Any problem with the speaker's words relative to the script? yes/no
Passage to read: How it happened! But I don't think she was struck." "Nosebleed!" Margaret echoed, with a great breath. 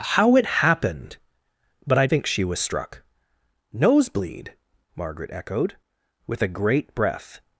yes